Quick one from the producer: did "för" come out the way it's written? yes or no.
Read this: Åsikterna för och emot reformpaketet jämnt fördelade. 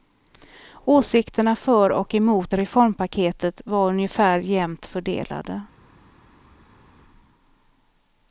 yes